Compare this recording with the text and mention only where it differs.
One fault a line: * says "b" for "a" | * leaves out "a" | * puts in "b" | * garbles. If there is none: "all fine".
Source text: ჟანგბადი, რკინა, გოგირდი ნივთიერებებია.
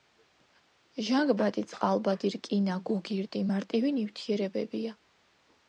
* puts in "წყალბადი"
* puts in "მარტივი"